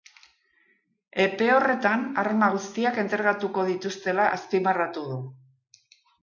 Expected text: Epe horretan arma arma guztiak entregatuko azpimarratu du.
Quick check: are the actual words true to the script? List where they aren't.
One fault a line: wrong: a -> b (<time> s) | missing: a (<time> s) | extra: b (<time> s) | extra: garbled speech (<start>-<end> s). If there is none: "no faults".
missing: arma (2.5 s)
extra: dituztela (3.7 s)